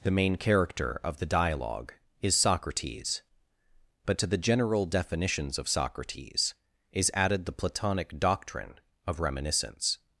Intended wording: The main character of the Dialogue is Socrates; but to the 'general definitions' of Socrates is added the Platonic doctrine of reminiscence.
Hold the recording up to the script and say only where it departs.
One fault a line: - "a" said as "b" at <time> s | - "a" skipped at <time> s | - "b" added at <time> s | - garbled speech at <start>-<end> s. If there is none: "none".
none